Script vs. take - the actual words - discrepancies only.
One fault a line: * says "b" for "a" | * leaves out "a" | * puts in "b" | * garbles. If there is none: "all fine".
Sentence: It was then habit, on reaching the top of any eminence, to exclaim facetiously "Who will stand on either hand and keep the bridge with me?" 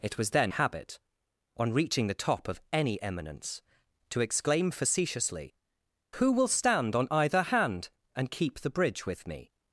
all fine